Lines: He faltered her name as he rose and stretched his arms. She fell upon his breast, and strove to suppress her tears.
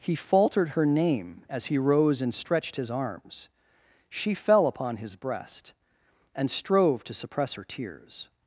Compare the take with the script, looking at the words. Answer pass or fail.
pass